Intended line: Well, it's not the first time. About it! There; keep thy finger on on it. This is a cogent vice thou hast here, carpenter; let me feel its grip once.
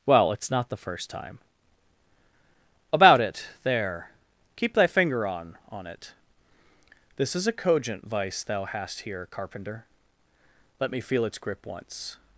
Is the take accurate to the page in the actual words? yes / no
yes